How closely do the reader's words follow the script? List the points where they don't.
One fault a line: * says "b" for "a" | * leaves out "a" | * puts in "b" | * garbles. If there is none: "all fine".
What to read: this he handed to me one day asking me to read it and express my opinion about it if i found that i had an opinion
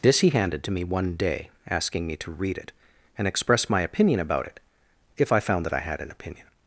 all fine